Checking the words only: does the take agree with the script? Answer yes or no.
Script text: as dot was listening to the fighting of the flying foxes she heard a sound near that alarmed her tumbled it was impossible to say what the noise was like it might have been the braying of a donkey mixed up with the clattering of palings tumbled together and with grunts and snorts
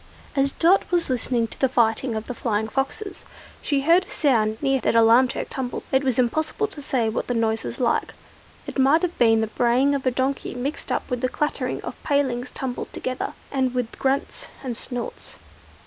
yes